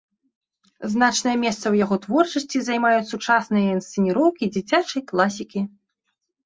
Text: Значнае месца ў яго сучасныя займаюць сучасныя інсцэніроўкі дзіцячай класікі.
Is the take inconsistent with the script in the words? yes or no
yes